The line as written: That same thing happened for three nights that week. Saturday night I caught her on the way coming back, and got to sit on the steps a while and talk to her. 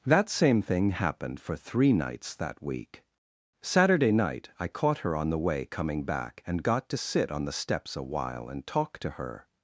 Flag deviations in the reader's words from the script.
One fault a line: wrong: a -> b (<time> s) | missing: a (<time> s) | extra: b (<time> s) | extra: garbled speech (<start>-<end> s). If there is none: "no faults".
no faults